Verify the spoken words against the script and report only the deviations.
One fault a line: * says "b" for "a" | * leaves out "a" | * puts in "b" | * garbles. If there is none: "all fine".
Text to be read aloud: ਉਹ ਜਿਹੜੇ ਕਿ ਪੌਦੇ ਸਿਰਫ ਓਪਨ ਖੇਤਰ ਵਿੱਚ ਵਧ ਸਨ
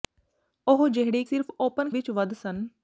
* leaves out "ਕਿ ਪੌਦੇ"
* leaves out "ਖੇਤਰ"